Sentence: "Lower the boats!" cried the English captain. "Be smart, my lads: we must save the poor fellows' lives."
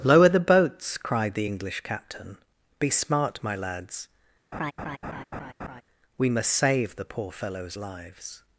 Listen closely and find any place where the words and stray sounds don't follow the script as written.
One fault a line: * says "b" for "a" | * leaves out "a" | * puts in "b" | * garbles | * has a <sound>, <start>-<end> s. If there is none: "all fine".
* has a laugh, 4.5-5.8 s